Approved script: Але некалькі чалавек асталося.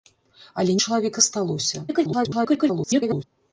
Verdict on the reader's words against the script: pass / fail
fail